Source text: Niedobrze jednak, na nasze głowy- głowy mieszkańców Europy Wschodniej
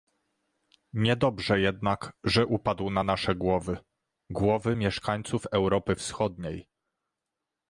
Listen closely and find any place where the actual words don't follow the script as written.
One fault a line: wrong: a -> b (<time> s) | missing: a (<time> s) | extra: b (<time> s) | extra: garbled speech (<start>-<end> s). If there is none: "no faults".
extra: że upadł (2.2 s)